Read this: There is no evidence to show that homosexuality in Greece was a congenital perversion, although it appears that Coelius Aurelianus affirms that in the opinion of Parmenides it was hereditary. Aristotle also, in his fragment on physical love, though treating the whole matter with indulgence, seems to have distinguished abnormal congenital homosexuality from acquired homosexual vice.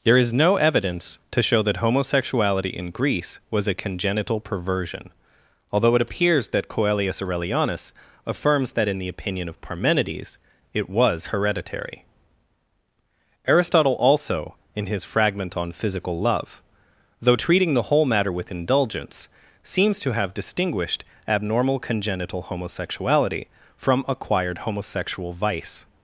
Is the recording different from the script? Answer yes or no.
no